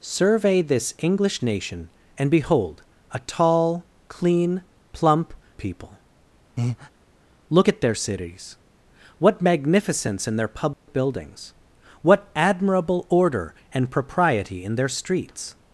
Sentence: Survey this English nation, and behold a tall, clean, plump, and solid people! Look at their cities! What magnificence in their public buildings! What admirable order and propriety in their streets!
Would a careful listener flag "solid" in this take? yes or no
yes